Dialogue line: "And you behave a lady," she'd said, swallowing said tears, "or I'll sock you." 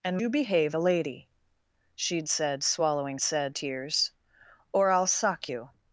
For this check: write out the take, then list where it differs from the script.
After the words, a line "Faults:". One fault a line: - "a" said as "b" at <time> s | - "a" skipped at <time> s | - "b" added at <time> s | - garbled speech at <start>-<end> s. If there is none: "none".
"And you behave a lady," she'd said, swallowing said tears, "or I'll sock you."
Faults:
none